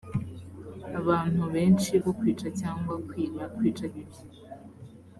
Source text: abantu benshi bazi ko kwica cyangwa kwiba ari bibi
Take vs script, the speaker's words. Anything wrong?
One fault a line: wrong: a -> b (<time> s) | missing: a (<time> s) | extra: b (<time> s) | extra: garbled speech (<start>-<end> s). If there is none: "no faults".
missing: bazi (1.9 s)
wrong: ari -> kwica (3.6 s)